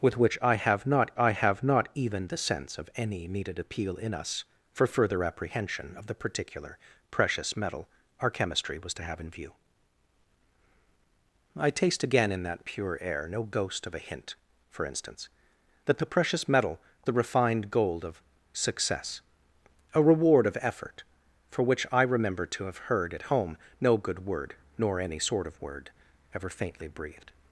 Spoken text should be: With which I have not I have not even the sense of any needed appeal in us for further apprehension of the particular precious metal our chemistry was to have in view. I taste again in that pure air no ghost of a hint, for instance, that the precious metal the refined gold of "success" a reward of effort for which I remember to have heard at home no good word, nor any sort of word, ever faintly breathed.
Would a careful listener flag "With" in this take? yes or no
no